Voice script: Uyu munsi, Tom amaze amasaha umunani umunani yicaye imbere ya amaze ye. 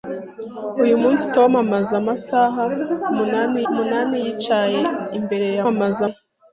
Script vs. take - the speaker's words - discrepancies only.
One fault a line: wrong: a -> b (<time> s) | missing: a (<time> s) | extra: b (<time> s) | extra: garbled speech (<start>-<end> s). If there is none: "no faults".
no faults